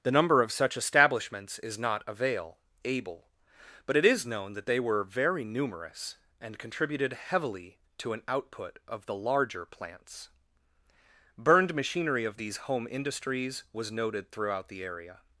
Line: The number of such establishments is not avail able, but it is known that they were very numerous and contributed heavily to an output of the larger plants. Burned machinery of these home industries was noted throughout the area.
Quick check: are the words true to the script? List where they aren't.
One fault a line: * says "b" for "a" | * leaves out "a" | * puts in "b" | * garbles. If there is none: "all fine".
all fine